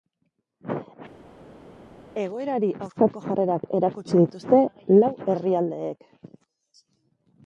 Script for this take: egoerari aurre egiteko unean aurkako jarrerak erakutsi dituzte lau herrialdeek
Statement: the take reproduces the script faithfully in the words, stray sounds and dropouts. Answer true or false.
false